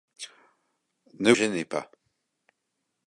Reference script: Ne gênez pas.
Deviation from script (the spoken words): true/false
false